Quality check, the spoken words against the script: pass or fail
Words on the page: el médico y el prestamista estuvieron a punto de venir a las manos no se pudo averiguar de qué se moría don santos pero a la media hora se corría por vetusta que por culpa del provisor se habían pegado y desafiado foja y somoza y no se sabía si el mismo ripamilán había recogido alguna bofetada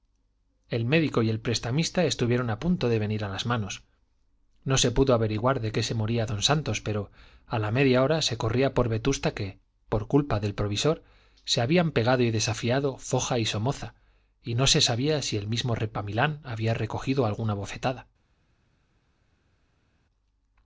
pass